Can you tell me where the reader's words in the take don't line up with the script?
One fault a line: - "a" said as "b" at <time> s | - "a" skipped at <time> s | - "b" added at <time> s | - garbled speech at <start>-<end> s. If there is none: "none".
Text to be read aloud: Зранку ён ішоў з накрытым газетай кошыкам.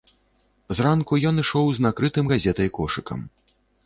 none